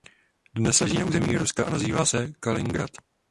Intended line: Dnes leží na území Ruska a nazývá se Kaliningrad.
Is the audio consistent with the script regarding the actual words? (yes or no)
yes